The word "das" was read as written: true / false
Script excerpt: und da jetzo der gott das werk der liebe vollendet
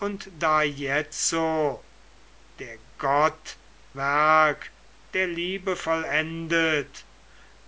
false